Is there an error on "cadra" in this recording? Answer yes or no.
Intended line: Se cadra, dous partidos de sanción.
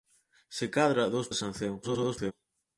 no